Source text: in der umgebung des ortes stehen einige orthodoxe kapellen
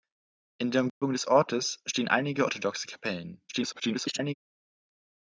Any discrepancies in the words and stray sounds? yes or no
yes